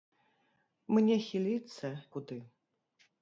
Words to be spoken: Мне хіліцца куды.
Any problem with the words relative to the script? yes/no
no